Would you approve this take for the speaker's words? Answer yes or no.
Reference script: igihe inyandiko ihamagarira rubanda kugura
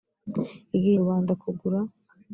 no